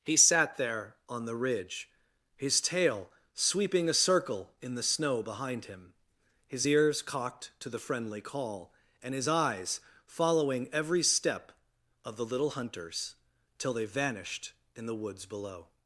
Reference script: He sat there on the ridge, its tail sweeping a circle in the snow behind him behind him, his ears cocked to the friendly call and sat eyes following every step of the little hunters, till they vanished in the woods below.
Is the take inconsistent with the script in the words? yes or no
yes